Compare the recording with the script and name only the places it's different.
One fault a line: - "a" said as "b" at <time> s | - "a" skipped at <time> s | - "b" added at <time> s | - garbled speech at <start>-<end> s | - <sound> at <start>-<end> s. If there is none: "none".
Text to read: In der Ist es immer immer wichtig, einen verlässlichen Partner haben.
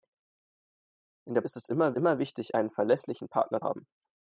none